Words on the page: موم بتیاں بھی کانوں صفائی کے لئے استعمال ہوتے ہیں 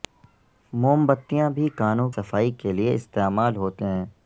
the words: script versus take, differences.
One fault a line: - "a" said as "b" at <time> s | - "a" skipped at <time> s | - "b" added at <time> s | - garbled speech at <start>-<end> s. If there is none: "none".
none